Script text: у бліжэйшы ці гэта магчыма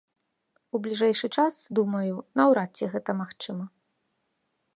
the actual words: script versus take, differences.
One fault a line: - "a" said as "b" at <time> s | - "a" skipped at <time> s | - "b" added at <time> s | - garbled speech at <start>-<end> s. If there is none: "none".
- "час думаю наўрад" added at 1.4 s